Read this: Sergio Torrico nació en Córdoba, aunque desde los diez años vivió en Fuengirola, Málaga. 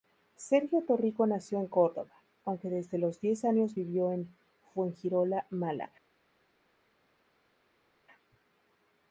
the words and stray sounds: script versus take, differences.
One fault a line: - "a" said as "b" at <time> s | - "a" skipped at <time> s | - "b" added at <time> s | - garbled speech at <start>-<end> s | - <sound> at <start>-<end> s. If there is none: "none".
none